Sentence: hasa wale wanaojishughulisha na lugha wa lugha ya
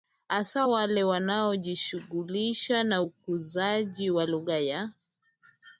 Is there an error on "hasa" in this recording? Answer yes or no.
no